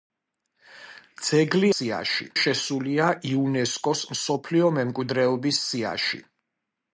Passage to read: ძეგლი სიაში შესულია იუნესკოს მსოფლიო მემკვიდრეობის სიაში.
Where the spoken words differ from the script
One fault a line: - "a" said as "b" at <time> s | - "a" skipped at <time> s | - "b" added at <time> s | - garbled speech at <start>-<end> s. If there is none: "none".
none